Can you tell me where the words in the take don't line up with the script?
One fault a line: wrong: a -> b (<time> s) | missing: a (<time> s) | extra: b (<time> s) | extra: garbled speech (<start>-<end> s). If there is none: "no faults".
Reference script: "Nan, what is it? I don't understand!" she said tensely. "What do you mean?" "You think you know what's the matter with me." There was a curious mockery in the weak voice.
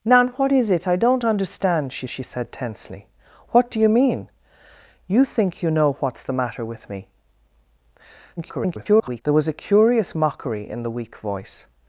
extra: she (2.1 s)
extra: garbled speech (8.4-9.2 s)